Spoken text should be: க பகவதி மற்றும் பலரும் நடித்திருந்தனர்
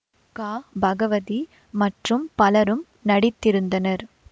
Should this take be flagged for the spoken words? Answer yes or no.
no